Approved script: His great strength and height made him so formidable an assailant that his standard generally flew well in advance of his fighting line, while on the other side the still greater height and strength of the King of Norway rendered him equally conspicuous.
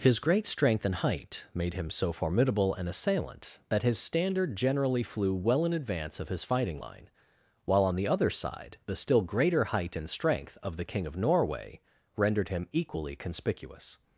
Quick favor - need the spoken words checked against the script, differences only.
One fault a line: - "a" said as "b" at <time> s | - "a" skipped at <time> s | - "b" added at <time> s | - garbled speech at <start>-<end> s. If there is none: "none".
none